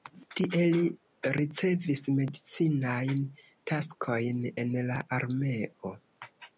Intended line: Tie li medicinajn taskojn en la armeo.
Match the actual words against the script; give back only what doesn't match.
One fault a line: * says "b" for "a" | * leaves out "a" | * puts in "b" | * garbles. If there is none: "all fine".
* puts in "ricevis"